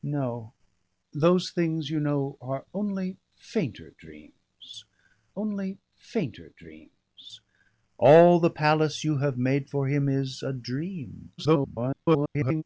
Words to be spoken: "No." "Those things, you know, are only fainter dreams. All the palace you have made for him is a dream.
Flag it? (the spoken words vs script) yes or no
yes